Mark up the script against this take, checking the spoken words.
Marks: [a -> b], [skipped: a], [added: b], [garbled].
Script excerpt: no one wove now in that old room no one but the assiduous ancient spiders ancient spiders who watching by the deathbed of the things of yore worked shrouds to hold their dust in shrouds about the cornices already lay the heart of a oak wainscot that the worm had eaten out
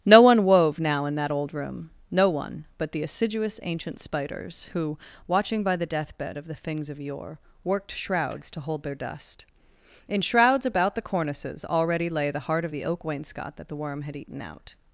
no one wove now in that old room no one but the assiduous ancient spiders [skipped: ancient spiders] who watching by the deathbed of the things of yore worked shrouds to hold their dust in shrouds about the cornices already lay the heart of [a -> the] oak wainscot that the worm had eaten out